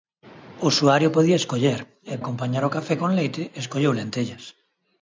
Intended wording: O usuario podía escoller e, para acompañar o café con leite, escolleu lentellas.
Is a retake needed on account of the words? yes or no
yes